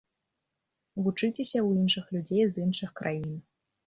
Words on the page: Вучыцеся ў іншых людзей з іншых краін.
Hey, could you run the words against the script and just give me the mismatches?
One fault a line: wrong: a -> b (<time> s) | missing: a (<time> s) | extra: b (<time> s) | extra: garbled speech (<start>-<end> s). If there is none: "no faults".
no faults